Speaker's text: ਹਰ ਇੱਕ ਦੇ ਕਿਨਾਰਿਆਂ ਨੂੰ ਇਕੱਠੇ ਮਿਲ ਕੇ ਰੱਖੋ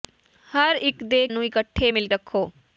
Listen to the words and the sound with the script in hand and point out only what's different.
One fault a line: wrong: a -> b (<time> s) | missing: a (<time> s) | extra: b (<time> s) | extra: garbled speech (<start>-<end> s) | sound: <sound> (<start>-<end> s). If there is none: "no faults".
missing: ਕਿਨਾਰਿਆਂ (1.3 s)
missing: ਕੇ (2.1 s)